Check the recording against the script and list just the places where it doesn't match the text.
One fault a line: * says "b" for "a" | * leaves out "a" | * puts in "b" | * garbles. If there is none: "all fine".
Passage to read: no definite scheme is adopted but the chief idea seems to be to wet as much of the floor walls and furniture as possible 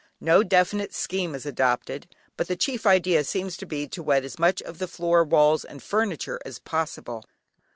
all fine